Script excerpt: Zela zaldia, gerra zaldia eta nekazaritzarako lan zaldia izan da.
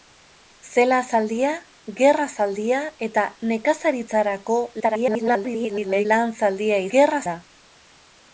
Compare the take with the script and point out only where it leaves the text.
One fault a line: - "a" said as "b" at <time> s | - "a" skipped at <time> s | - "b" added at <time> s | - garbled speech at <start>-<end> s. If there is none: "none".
- garbled speech at 4.8-6.1 s
- "izan" said as "gerra" at 6.9 s